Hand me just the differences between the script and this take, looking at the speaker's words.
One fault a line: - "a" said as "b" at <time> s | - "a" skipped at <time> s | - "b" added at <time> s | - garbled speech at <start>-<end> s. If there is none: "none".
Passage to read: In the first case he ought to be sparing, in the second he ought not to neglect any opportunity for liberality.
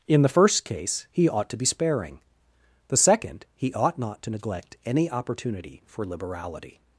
- "in" skipped at 2.2 s